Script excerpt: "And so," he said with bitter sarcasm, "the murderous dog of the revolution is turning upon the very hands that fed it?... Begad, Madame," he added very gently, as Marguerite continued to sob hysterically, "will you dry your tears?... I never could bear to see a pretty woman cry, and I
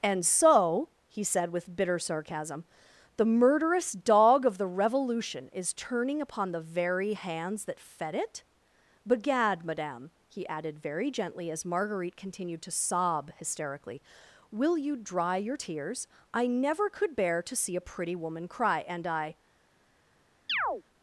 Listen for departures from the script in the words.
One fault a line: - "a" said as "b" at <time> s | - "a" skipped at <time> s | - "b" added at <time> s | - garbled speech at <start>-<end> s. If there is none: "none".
none